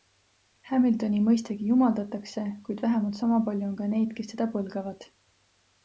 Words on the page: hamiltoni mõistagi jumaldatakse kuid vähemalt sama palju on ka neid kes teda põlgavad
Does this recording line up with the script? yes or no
yes